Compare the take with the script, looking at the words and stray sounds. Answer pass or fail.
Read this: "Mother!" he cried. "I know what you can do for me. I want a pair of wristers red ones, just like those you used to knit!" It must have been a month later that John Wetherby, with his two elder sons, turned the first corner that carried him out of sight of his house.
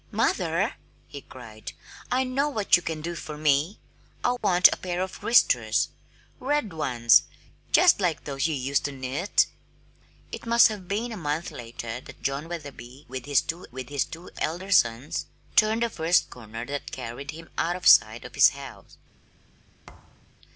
fail